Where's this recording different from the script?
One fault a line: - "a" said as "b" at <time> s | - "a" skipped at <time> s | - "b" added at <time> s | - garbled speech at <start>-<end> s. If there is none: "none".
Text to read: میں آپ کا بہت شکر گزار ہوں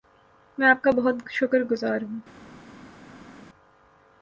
none